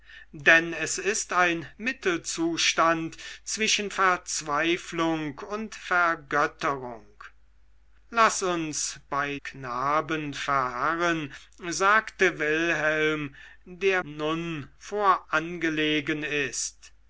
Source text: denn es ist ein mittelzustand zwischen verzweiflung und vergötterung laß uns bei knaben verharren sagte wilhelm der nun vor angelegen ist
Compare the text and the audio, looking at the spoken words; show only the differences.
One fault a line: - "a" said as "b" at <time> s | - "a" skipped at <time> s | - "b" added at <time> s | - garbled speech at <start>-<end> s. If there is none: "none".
none